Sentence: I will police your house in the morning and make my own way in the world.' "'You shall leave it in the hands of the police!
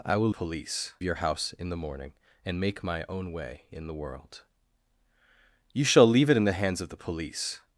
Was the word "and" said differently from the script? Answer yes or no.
no